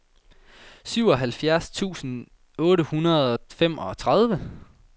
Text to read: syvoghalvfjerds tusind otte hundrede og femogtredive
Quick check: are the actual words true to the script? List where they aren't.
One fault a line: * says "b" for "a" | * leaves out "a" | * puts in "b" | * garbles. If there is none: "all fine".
all fine